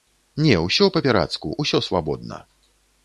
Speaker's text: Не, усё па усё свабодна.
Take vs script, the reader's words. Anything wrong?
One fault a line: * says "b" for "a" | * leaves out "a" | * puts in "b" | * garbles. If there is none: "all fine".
* puts in "пірацку"